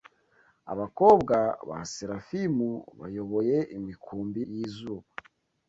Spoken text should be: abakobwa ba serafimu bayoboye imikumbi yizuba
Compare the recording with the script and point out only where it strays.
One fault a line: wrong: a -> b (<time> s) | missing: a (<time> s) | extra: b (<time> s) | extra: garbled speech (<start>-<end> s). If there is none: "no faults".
no faults